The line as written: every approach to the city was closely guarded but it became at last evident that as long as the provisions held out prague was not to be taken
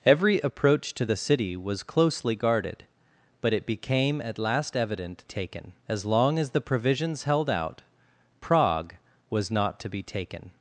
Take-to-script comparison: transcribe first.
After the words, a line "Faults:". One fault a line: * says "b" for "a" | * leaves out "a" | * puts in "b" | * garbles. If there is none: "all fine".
every approach to the city was closely guarded but it became at last evident taken as long as the provisions held out prague was not to be taken
Faults:
* says "taken" for "that"